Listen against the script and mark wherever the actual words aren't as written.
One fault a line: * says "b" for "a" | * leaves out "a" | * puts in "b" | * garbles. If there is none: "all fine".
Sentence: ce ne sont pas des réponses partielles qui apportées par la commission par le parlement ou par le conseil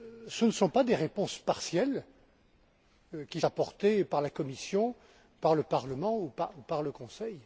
all fine